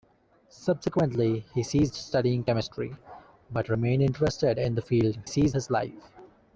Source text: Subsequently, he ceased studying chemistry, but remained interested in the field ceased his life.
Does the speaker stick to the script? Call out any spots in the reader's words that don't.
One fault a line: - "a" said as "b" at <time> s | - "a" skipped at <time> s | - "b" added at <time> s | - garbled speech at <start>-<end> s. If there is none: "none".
none